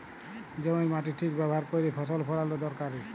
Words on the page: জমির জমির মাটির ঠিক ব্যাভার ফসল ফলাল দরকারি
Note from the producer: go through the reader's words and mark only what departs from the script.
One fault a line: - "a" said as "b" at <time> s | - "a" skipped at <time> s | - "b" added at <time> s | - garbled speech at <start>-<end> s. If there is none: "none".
- "জমির" skipped at 0.9 s
- "ক্যইরে" added at 1.7 s